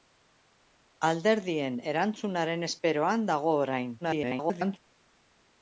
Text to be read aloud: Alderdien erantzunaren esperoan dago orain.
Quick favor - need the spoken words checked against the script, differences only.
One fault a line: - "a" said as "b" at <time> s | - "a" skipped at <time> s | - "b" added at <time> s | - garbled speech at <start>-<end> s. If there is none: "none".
- garbled speech at 4.0-4.8 s